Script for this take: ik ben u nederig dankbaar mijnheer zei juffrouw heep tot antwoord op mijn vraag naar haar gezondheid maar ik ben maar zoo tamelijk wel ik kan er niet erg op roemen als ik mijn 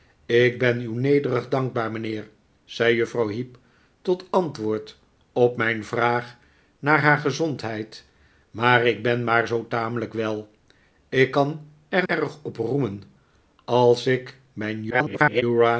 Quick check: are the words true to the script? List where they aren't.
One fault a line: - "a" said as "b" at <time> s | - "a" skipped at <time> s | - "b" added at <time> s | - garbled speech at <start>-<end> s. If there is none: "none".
- "niet" skipped at 12.1 s
- garbled speech at 14.9-15.4 s